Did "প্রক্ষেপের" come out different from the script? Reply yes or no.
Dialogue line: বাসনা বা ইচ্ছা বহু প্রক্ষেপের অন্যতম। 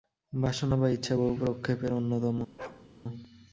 no